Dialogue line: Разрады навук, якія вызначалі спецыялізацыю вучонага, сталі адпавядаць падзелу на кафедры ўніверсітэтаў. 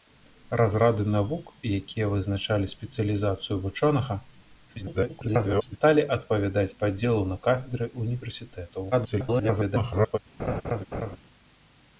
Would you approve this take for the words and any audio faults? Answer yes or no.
no